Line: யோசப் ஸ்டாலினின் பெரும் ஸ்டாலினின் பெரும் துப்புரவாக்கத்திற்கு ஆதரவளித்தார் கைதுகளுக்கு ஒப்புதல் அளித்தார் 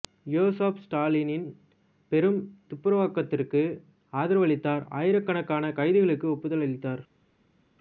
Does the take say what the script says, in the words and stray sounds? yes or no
no